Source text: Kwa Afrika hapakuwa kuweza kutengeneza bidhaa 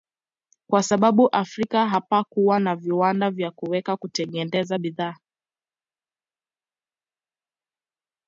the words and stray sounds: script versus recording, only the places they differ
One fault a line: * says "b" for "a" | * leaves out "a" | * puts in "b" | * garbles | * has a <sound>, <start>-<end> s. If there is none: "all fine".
* puts in "sababu"
* puts in "na viwanda vya"